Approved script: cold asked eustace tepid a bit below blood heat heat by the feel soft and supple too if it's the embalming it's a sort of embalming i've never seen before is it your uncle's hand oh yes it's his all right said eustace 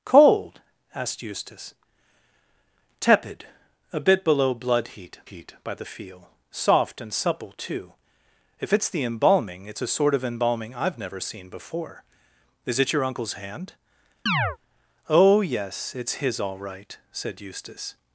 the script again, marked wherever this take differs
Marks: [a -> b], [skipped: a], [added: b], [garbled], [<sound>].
cold asked eustace tepid a bit below blood heat heat by the feel soft and supple too if it's the embalming it's a sort of embalming i've never seen before is it your uncle's hand [chirp] oh yes it's his all right said eustace